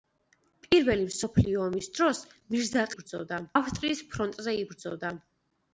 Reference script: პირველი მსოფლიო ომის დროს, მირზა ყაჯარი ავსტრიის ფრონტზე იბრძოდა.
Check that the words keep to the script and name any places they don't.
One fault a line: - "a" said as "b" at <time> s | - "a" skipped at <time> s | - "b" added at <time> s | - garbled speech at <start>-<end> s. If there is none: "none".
- "ყაჯარი" said as "იბრძოდა" at 2.9 s